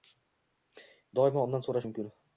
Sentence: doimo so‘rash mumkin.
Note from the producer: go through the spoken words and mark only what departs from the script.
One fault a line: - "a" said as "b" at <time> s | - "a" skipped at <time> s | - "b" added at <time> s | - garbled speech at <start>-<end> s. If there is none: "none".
- "undan" added at 1.5 s